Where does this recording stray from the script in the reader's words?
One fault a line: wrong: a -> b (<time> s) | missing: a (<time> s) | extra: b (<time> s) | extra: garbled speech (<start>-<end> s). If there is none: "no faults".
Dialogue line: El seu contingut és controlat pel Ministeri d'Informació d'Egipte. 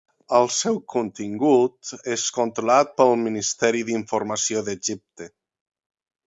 no faults